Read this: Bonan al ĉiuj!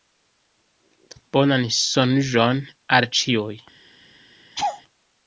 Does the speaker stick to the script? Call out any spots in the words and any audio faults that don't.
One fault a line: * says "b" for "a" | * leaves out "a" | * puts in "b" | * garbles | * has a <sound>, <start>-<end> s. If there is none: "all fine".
* puts in "sonĝon"
* has a laugh, 4.6-4.8 s